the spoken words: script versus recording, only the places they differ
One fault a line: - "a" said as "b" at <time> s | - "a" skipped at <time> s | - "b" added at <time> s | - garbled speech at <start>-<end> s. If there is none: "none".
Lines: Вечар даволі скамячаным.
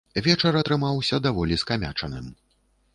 - "атрымаўся" added at 0.6 s